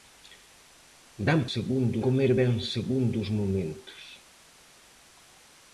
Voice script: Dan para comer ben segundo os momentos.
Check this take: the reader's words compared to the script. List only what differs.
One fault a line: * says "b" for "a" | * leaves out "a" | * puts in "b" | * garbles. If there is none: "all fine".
* says "segundo" for "para"